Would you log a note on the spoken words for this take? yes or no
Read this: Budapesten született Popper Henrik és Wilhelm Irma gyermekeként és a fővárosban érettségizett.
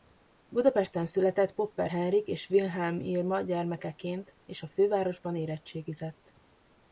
no